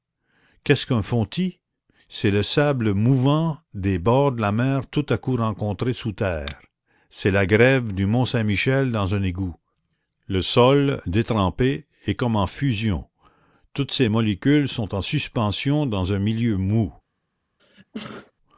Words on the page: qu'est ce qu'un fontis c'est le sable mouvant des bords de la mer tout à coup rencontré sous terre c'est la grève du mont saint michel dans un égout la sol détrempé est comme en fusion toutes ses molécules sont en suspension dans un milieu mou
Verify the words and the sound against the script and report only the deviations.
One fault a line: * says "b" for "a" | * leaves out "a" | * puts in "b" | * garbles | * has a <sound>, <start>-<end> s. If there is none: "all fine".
* says "le" for "la"
* has a sneeze, 17.6-18.3 s